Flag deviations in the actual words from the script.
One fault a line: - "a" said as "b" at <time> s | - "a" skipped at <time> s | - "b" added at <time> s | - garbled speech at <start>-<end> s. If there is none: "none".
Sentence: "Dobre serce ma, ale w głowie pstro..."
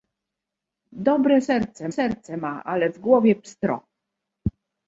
- "serce" added at 1.9 s